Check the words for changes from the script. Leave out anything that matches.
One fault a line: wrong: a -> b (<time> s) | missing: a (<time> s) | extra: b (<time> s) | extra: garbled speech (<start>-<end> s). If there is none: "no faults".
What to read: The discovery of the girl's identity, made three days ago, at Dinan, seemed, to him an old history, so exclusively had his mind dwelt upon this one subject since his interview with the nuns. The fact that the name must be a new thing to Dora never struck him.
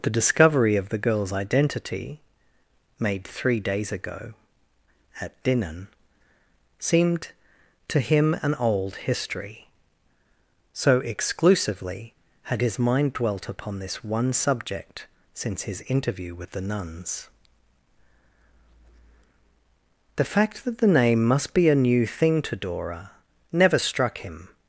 no faults